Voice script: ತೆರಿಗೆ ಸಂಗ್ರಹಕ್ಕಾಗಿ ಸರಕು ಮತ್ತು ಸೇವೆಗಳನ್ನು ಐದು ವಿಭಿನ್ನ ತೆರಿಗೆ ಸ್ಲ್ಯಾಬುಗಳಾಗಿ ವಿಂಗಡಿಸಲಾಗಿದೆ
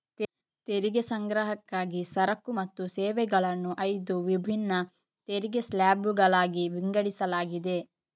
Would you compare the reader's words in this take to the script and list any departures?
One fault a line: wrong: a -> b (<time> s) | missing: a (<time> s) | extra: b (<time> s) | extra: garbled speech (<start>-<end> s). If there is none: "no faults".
no faults